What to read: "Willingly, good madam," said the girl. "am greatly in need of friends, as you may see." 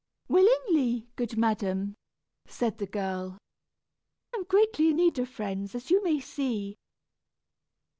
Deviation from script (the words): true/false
false